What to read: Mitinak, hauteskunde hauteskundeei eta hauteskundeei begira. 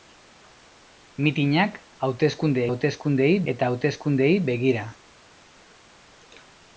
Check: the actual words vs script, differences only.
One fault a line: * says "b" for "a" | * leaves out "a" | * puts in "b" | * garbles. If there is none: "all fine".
all fine